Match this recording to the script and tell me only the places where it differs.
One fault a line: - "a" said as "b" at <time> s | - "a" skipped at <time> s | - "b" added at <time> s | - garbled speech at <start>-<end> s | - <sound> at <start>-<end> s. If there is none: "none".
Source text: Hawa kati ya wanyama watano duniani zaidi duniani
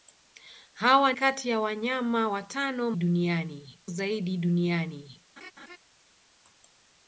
- laugh at 5.4-5.8 s